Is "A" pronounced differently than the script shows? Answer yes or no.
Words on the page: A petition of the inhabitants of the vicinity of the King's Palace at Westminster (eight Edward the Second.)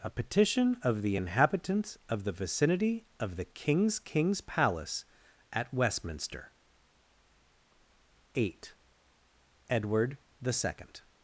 no